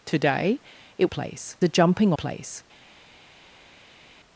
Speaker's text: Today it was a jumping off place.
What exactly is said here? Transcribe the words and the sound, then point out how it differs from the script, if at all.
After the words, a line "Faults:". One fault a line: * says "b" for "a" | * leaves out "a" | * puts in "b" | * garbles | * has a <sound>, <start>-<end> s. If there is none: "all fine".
Today it place a jumping place.
Faults:
* says "place" for "was"
* leaves out "off"